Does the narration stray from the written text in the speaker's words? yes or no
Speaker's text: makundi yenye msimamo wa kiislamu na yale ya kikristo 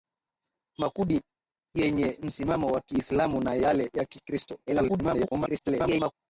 yes